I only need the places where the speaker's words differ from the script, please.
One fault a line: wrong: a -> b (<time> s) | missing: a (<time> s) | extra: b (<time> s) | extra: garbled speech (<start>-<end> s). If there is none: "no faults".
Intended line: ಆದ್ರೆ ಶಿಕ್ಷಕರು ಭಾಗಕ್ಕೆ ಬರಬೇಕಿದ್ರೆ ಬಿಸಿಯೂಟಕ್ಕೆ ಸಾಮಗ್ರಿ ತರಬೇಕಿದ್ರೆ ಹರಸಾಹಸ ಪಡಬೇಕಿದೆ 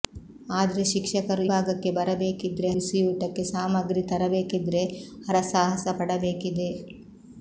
no faults